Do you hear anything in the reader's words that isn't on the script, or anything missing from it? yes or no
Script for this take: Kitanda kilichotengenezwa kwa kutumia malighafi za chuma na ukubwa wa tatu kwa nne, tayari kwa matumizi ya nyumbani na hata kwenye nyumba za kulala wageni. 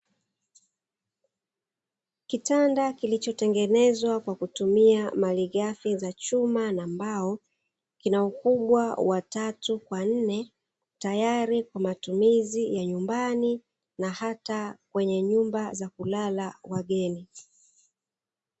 yes